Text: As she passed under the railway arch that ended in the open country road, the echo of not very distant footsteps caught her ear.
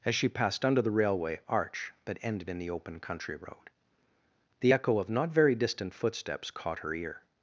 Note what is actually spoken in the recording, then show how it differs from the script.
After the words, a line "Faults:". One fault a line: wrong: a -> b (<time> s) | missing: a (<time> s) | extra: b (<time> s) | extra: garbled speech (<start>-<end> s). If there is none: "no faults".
As she passed under the railway arch that ended in the open country road, the echo of not very distant footsteps caught her ear.
Faults:
no faults